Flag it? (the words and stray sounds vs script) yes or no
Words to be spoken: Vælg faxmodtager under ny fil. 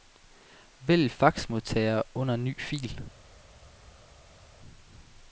no